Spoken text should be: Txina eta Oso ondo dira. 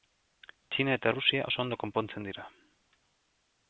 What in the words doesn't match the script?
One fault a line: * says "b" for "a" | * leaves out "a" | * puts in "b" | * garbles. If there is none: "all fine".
* puts in "Errusia"
* puts in "konpontzen"